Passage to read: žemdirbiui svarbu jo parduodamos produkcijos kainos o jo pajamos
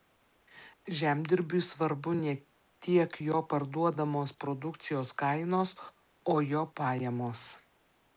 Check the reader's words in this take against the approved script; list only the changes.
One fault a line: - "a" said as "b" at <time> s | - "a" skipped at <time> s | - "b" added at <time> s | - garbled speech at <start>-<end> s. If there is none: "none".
- "ne tiek" added at 2.2 s